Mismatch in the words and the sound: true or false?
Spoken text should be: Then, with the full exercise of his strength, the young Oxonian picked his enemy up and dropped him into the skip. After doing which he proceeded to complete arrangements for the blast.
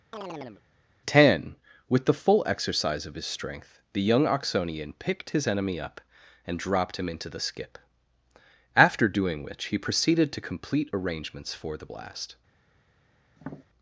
true